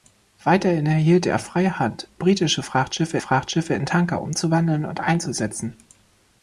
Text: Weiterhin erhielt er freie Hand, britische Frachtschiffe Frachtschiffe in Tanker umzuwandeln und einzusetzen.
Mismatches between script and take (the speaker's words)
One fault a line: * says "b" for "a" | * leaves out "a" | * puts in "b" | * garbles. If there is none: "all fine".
all fine